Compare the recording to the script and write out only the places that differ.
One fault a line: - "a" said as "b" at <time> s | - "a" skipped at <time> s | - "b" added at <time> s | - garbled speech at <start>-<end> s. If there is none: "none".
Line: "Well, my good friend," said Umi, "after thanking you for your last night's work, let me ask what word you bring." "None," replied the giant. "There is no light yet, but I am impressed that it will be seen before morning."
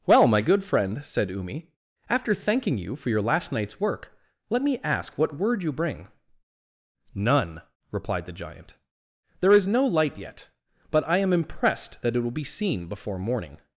none